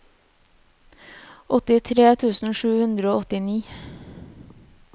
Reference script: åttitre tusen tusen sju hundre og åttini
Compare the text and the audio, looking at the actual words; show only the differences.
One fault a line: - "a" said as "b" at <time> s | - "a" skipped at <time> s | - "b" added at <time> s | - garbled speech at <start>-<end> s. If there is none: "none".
- "tusen" skipped at 2.6 s